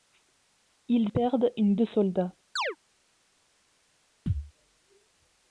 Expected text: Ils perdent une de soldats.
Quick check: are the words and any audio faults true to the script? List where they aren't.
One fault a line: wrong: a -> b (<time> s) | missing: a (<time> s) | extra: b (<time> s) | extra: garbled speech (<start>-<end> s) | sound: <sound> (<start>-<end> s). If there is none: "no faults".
sound: chirp (2.6-2.8 s)
sound: thud (4.3-4.5 s)